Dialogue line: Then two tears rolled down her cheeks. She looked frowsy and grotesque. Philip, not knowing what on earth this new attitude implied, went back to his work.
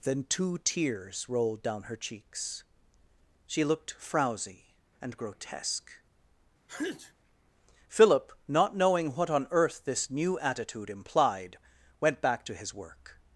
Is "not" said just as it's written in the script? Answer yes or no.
yes